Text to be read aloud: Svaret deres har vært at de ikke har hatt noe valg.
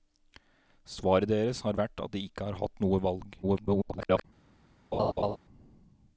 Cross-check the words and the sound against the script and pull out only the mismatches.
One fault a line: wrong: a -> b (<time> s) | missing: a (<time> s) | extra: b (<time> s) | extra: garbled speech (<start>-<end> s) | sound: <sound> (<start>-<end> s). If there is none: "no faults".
extra: garbled speech (3.4-4.2 s)
sound: laugh (4.9-5.4 s)